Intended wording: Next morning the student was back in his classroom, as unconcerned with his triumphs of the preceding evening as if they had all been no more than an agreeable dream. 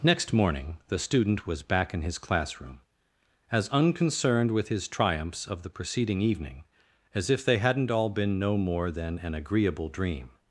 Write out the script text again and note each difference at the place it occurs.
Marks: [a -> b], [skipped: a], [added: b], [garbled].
Next morning the student was back in his classroom, as unconcerned with his triumphs of the preceding evening as if they [had -> hadn't] all been no more than an agreeable dream.